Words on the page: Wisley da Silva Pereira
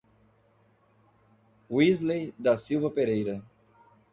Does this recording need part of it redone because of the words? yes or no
no